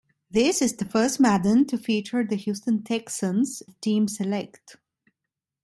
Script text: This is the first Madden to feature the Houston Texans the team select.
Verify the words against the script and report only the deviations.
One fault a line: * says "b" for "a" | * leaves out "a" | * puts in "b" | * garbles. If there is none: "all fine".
all fine